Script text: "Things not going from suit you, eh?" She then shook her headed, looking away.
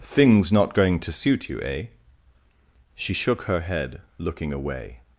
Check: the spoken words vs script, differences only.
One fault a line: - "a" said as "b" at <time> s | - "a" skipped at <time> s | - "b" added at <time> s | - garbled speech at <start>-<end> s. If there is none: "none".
- "from" said as "to" at 1.0 s
- "then" skipped at 3.1 s
- "headed" said as "head" at 3.6 s